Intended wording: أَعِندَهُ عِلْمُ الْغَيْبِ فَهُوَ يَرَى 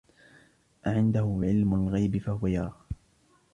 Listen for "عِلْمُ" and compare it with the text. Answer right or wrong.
right